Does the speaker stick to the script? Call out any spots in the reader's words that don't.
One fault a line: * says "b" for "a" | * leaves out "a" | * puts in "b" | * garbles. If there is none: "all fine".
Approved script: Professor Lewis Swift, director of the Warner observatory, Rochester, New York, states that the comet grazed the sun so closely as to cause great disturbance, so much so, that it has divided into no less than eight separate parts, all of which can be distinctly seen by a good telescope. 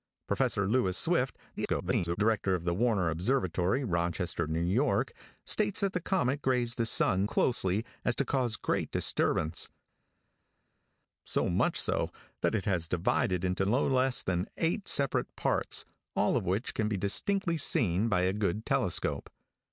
* garbles
* leaves out "so"